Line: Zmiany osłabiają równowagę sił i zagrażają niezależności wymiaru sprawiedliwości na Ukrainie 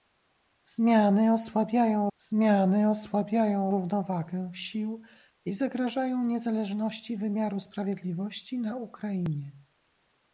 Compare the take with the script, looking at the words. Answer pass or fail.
fail